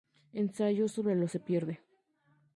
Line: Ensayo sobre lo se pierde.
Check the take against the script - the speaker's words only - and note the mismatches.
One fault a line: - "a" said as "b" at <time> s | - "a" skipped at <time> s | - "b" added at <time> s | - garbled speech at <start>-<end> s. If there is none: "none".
none